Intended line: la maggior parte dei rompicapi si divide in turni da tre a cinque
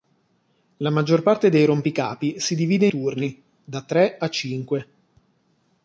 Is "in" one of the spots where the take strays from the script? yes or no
yes